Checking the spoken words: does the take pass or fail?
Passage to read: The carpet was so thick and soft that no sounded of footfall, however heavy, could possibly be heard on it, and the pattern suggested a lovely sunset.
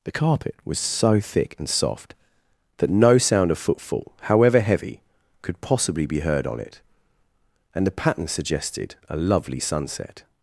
fail